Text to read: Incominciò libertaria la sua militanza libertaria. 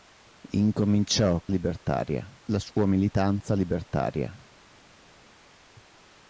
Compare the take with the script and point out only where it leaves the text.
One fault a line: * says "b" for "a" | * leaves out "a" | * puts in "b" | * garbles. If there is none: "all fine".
all fine